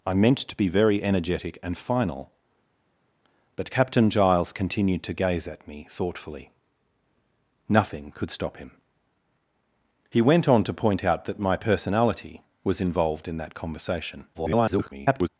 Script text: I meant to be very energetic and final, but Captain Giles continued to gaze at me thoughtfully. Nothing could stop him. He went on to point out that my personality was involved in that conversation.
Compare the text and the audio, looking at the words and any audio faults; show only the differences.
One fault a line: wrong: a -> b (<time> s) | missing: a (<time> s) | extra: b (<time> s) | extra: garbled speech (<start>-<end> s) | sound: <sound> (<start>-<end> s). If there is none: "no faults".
extra: garbled speech (14.3-15.3 s)